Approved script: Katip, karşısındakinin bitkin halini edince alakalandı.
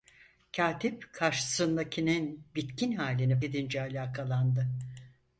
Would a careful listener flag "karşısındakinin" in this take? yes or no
no